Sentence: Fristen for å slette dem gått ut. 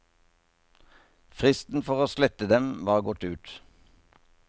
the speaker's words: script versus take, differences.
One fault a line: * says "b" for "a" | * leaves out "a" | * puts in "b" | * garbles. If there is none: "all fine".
* puts in "var"